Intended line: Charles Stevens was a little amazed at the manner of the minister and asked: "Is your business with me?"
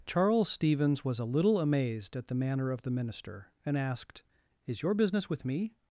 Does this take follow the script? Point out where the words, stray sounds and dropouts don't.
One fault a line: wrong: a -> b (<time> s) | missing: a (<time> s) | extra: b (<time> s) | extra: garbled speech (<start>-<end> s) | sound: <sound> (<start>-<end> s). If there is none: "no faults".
no faults